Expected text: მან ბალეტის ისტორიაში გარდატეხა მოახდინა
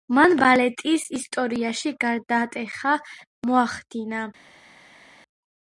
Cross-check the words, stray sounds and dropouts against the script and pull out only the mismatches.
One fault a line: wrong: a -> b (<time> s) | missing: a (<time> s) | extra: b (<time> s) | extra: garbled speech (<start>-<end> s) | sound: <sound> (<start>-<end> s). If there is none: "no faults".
no faults